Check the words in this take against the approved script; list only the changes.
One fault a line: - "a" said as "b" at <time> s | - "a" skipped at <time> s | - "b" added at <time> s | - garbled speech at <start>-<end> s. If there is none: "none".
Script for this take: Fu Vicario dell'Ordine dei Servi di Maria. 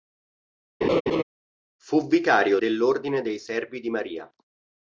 none